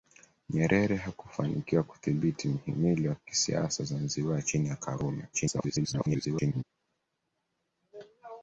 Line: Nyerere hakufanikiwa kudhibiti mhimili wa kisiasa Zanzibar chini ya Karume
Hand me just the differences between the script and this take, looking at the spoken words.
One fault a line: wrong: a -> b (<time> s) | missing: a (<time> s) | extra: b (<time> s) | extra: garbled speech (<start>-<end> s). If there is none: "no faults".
extra: garbled speech (5.3-6.6 s)